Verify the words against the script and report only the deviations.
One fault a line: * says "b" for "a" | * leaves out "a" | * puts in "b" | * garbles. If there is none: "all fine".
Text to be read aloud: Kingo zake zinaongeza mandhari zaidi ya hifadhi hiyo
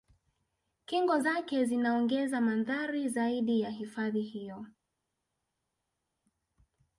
all fine